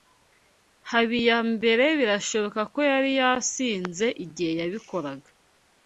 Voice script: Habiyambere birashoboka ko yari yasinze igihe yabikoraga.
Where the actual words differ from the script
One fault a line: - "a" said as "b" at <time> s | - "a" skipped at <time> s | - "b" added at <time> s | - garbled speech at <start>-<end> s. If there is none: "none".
none